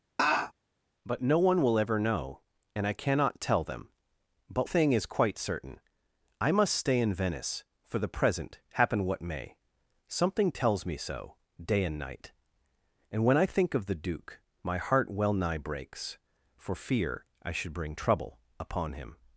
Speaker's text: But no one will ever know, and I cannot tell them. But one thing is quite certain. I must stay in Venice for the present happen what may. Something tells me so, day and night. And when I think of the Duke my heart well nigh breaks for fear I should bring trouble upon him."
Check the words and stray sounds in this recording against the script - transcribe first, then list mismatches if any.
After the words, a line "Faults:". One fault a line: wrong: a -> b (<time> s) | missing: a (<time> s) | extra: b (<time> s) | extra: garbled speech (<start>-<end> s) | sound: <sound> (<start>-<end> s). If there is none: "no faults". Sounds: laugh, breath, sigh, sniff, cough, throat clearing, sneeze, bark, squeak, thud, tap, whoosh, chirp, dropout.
But no one will ever know, and I cannot tell them. But thing is quite certain. I must stay in Venice for the present happen what may. Something tells me so, day and night. And when I think of the Duke my heart well nigh breaks for fear I should bring trouble upon him."
Faults:
sound: laugh (0.2-0.5 s)
missing: one (4.7 s)